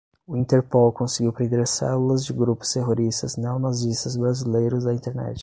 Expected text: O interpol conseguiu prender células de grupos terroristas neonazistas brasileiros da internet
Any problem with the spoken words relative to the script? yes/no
no